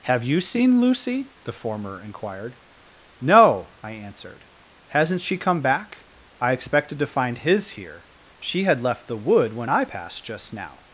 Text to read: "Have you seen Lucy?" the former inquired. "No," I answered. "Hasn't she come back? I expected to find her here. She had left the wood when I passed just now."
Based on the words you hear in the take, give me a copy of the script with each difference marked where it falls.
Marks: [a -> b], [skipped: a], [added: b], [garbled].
"Have you seen Lucy?" the former inquired. "No," I answered. "Hasn't she come back? I expected to find [her -> his] here. She had left the wood when I passed just now."